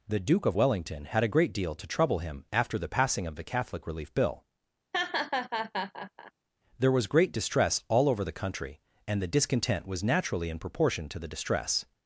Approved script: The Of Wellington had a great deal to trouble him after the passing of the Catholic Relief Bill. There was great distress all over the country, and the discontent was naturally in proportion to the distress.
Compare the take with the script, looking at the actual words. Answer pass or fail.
fail